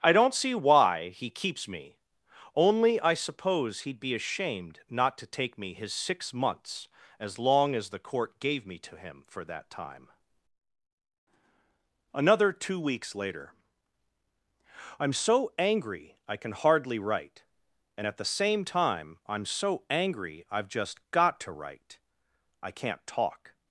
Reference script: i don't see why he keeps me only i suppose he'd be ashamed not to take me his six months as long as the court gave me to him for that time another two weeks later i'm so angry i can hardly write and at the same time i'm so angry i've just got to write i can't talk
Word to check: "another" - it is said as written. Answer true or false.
true